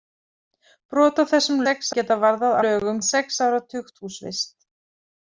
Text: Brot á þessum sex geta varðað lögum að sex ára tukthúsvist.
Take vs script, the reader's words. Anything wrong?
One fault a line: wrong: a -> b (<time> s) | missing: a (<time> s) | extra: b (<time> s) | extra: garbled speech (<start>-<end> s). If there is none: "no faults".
no faults